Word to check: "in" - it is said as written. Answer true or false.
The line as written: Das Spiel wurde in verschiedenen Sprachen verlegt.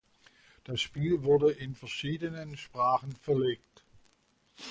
true